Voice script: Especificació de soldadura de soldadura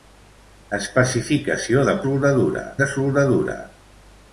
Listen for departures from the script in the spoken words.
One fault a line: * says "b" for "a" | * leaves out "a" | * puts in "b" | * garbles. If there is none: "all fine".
all fine